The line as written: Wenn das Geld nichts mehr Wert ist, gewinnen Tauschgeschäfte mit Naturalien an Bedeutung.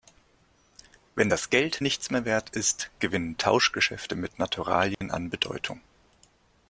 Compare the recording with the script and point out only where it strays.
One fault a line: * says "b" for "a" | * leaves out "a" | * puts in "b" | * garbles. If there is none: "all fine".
all fine